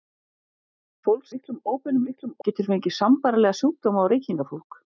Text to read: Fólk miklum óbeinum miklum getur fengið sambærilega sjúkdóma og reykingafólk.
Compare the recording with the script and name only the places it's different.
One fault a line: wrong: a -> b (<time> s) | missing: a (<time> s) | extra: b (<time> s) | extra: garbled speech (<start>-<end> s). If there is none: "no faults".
no faults